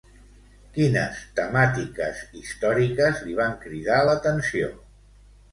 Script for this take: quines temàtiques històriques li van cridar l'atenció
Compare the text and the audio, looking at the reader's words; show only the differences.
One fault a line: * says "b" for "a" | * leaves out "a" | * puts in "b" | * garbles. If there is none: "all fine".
all fine